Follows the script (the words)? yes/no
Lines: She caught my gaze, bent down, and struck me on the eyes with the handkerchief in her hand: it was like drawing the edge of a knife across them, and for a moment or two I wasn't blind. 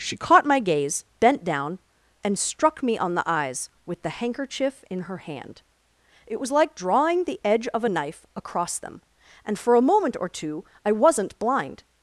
yes